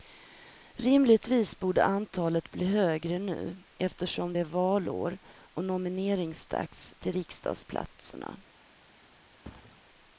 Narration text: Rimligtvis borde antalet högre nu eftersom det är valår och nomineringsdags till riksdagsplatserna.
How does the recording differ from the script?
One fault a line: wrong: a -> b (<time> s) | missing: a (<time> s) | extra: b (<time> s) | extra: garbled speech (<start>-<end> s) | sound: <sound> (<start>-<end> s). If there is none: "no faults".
extra: bli (2.5 s)
sound: thud (9.4-9.8 s)